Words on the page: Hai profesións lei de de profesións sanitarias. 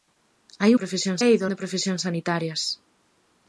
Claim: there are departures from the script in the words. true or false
false